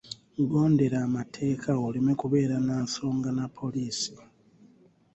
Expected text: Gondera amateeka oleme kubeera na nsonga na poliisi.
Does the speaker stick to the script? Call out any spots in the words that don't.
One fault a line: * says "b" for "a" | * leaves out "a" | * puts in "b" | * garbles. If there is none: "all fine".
all fine